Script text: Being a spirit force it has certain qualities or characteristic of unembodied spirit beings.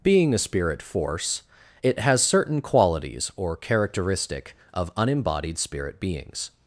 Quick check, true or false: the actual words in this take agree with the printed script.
true